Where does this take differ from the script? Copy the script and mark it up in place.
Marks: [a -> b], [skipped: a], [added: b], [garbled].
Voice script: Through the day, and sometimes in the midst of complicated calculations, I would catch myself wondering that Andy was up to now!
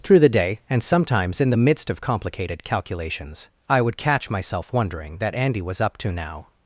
Through the day, and sometimes in the midst of complicated calculations, I would catch myself wondering that Andy was up to now!